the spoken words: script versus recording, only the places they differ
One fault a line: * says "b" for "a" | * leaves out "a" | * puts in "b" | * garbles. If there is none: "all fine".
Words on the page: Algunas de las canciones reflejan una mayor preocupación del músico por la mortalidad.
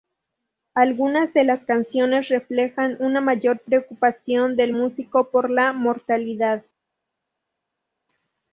all fine